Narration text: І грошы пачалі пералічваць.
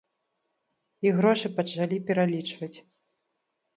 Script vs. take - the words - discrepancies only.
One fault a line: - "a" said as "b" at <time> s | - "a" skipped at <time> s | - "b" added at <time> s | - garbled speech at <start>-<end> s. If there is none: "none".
none